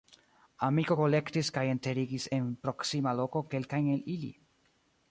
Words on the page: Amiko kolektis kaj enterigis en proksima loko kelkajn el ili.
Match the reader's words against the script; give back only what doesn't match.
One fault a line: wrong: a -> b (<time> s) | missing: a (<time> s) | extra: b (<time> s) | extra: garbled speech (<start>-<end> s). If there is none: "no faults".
no faults